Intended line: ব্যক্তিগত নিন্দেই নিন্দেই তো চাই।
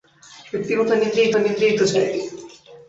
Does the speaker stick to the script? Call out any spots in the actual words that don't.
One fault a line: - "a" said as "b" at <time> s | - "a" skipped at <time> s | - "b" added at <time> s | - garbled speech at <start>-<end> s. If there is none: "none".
none